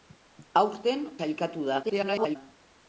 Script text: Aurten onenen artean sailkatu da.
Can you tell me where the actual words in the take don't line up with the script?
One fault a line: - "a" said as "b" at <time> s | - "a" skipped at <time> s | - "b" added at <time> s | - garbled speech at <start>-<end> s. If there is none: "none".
- "onenen artean" skipped at 1.0 s
- garbled speech at 1.8-2.4 s